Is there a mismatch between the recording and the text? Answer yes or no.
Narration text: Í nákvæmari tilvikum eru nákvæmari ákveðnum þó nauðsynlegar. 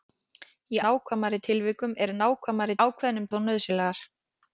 no